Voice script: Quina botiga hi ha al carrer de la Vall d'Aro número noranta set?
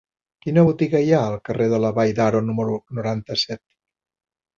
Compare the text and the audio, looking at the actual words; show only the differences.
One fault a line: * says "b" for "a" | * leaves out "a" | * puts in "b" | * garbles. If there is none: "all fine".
all fine